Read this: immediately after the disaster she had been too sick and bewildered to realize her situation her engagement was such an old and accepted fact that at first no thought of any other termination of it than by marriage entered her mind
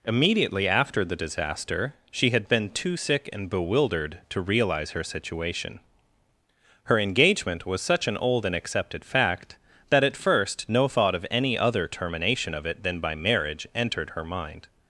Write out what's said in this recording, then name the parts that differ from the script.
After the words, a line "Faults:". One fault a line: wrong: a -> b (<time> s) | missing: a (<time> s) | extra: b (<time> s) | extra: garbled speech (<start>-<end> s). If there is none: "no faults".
immediately after the disaster she had been too sick and bewildered to realize her situation her engagement was such an old and accepted fact that at first no thought of any other termination of it than by marriage entered her mind
Faults:
no faults